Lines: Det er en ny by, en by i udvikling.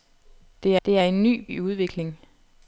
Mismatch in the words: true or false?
true